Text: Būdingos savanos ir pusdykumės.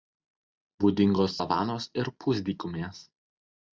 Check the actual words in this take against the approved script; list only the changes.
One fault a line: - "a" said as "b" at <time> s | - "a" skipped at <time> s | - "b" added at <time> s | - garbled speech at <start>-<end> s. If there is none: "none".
none